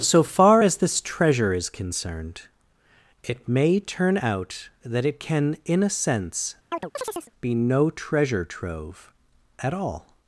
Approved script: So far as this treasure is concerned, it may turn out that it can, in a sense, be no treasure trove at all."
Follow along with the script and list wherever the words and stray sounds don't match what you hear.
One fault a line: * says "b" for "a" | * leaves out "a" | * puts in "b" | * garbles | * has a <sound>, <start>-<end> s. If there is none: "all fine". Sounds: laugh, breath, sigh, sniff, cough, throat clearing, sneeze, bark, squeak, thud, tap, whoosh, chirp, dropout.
* has a chirp, 6.7-7.3 s